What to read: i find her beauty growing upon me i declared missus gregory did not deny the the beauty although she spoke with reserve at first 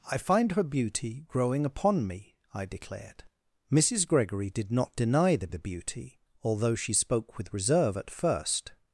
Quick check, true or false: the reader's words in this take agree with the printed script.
true